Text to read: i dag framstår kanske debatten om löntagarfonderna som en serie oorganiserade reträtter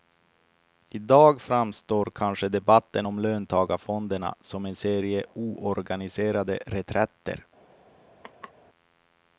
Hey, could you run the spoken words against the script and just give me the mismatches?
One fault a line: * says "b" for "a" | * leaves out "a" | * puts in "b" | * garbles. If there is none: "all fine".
all fine